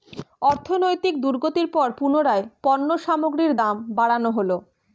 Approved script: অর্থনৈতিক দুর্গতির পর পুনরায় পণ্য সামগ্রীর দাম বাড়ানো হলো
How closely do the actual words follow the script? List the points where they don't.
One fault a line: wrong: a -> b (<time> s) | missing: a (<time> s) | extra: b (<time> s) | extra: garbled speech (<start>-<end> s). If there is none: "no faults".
no faults